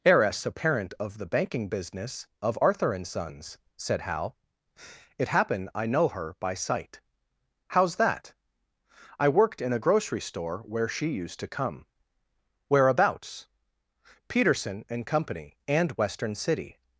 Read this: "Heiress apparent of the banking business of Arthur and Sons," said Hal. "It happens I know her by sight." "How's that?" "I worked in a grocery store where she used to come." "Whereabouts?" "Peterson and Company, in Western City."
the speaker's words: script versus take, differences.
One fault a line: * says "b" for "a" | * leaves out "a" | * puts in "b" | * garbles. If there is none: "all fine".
* says "happen" for "happens"
* says "and" for "in"